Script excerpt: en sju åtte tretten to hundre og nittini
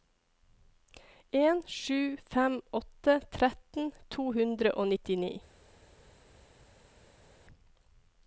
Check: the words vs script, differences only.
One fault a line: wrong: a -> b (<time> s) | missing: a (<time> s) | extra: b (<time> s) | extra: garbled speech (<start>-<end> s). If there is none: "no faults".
extra: fem (2.3 s)